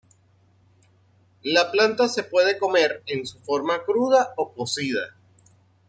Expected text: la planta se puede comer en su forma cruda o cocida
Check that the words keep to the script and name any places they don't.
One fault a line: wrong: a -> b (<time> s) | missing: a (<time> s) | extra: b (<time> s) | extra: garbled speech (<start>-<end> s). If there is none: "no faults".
no faults